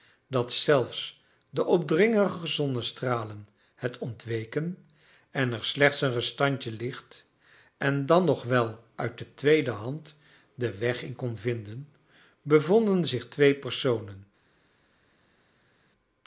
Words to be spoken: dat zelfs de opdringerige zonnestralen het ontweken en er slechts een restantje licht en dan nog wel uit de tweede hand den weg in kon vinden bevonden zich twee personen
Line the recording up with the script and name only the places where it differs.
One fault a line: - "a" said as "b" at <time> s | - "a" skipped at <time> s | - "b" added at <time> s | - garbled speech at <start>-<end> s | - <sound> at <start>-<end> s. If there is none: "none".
none